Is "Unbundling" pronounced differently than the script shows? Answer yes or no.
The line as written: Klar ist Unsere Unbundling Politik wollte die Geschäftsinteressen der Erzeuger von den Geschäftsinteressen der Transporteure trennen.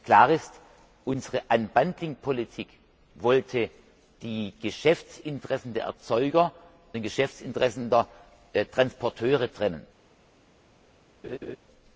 no